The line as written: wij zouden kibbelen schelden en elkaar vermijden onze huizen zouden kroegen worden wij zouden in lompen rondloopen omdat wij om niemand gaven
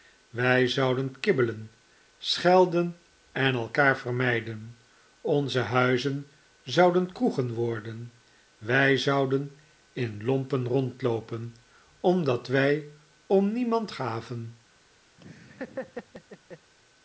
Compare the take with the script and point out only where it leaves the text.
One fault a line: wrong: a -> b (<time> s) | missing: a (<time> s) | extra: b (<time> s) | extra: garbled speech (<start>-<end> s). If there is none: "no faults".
no faults